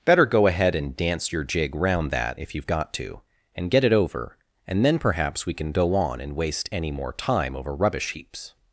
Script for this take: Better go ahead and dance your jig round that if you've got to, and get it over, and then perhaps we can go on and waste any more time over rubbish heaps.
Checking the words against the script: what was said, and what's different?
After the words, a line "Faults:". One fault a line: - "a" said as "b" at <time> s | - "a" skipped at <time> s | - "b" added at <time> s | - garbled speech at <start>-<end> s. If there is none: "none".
Better go ahead and dance your jig round that if you've got to, and get it over, and then perhaps we can go on and waste any more time over rubbish heaps.
Faults:
none